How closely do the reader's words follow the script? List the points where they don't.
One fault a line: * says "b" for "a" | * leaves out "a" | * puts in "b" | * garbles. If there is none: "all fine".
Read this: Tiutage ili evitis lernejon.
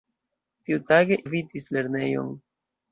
* leaves out "ili"